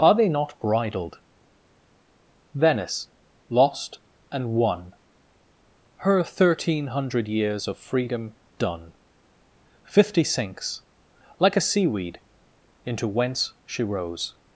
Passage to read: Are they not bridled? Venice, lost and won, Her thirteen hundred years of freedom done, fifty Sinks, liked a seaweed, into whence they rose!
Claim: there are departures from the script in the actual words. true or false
true